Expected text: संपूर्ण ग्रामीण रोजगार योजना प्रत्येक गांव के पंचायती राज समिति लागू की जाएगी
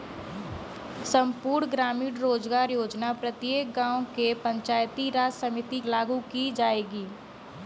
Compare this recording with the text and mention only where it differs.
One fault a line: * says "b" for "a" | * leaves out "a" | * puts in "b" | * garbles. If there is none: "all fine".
all fine